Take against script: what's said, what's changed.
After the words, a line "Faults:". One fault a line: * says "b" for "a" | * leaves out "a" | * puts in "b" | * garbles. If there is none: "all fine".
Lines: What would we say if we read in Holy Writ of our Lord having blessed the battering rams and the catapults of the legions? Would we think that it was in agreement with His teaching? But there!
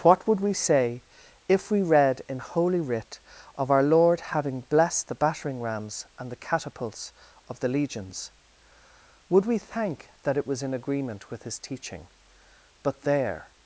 What would we say if we read in Holy Writ of our Lord having blessed the battering rams and the catapults of the legions? Would we thank that it was in agreement with His teaching? But there!
Faults:
* says "thank" for "think"